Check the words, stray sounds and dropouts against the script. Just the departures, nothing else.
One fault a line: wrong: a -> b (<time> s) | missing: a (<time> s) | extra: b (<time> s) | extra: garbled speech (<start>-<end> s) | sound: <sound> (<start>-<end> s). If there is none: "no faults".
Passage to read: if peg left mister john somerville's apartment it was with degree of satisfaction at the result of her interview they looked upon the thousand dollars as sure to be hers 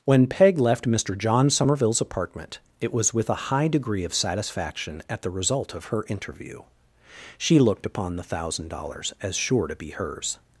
wrong: if -> when (0.0 s)
extra: a high (3.3 s)
wrong: they -> she (7.4 s)